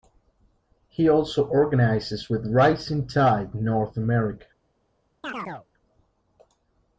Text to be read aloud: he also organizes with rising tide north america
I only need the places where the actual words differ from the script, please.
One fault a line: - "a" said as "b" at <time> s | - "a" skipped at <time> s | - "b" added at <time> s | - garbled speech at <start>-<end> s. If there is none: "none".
none